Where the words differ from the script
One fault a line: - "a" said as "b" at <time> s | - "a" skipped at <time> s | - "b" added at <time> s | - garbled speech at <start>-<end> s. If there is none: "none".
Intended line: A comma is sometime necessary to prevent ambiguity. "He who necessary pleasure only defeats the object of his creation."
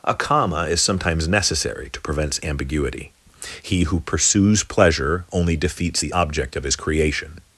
- "sometime" said as "sometimes" at 0.8 s
- "necessary" said as "pursues" at 4.0 s